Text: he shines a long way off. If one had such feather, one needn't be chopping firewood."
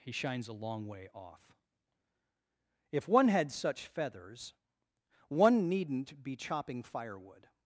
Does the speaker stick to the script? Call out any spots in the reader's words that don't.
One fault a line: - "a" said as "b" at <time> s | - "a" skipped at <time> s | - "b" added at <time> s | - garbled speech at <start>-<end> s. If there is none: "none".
- "feather" said as "feathers" at 3.9 s